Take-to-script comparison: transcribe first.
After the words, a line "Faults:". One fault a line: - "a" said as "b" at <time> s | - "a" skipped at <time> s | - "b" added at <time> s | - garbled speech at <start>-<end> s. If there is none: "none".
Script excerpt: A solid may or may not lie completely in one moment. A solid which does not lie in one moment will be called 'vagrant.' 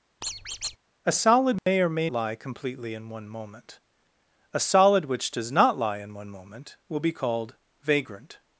A solid may or may lie completely in one moment. A solid which does not lie in one moment will be called 'vagrant.'
Faults:
- "not" skipped at 2.1 s